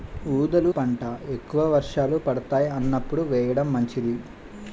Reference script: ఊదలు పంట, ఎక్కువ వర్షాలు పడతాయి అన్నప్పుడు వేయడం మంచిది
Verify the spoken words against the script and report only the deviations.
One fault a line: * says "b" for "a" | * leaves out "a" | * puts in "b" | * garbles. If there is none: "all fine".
all fine